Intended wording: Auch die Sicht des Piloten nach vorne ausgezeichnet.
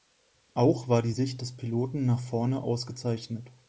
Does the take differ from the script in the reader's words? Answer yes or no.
yes